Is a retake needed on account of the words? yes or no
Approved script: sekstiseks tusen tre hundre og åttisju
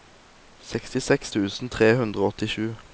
no